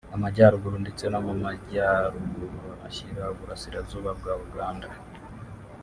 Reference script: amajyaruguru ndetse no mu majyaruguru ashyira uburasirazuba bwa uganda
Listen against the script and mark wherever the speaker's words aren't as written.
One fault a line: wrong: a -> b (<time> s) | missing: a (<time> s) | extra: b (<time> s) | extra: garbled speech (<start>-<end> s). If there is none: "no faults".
no faults